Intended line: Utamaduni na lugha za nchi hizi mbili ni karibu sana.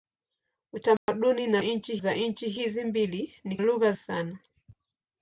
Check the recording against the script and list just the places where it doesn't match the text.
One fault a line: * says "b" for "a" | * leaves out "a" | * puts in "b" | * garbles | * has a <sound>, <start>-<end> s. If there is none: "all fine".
* has a dropout, 1.0-1.1 s
* says "nchi" for "lugha"
* says "lugha" for "karibu"